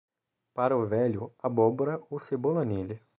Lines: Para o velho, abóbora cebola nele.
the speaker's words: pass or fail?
fail